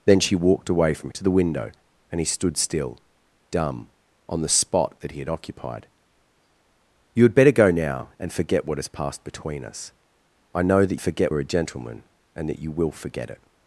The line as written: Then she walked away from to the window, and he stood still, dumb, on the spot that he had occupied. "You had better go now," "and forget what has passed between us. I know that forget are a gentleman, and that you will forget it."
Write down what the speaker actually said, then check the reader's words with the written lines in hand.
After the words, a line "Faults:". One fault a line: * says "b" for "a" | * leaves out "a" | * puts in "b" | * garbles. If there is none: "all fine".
Then she walked away from to the window, and he stood still, dumb, on the spot that he had occupied. "You had better go now," "and forget what has passed between us. I know that forget are a gentleman, and that you will forget it."
Faults:
all fine